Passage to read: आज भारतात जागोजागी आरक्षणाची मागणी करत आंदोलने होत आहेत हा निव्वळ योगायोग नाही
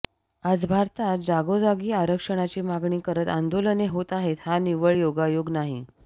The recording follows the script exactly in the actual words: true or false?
true